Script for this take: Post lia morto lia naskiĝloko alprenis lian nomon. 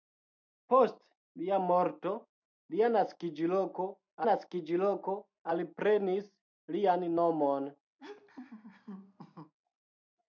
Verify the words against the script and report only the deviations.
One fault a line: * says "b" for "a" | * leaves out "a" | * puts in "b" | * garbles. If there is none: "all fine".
* puts in "naskiĝloko"